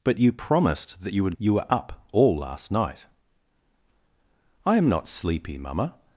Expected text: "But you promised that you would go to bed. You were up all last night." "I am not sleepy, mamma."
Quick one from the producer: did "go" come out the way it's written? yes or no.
no